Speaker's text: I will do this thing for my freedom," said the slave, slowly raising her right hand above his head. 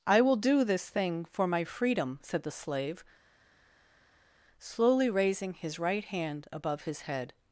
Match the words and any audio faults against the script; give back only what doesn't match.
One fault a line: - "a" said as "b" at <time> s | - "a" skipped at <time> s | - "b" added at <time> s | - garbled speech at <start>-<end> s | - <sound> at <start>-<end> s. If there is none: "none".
- "her" said as "his" at 5.5 s